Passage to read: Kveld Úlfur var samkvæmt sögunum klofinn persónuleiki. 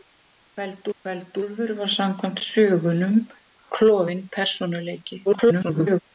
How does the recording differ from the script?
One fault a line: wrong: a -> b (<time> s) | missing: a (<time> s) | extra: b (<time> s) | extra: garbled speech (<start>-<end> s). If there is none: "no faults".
extra: kveld (1.0 s)
extra: garbled speech (5.3-6.0 s)